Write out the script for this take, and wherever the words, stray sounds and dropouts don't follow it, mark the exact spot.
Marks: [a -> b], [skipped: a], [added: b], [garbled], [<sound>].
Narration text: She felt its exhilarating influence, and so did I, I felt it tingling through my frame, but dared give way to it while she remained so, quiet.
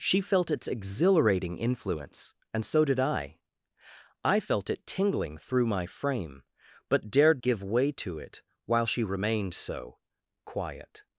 She felt its exhilarating influence, and so did I, I felt it tingling through my frame, but dared give way to it while she remained so, quiet.